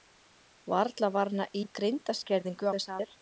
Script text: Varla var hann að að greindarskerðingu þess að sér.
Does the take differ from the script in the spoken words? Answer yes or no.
no